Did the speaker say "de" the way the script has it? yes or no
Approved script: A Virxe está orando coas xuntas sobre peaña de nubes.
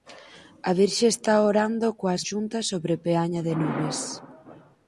yes